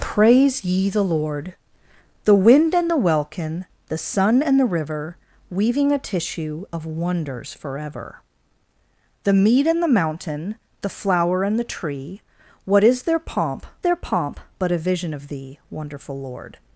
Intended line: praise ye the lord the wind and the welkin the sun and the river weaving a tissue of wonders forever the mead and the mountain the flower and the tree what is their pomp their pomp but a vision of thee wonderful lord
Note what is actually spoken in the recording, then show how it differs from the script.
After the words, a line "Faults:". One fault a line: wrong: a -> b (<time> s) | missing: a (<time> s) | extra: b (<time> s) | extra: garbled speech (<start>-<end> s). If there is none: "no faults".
praise ye the lord the wind and the welkin the sun and the river weaving a tissue of wonders forever the mead and the mountain the flower and the tree what is their pomp their pomp but a vision of thee wonderful lord
Faults:
no faults